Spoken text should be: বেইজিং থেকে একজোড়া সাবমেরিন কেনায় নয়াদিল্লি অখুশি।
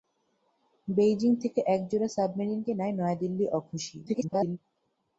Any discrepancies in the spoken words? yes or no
yes